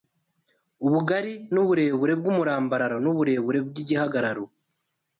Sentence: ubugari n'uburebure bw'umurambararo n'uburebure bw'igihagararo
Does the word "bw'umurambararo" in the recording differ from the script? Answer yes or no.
no